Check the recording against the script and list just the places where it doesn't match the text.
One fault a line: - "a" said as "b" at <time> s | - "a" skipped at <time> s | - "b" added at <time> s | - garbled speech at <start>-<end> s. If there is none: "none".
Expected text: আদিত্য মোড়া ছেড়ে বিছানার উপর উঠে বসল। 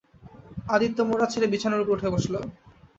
none